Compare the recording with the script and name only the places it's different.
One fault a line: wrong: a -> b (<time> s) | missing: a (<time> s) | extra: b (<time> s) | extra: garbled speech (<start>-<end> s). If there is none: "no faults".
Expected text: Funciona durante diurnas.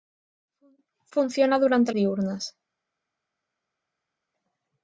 no faults